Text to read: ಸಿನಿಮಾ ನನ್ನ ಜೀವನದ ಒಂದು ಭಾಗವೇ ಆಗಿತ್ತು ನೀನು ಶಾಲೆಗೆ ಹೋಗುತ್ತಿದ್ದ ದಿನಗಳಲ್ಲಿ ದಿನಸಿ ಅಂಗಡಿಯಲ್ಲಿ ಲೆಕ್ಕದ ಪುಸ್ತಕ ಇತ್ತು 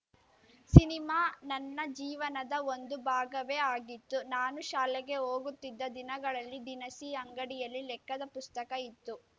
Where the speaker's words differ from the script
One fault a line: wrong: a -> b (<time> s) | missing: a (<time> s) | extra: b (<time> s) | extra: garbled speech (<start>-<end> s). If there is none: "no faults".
wrong: ನೀನು -> ನಾನು (4.3 s)